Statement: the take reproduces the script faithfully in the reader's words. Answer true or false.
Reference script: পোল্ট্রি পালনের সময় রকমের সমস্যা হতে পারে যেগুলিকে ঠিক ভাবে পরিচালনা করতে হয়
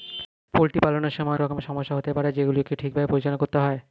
true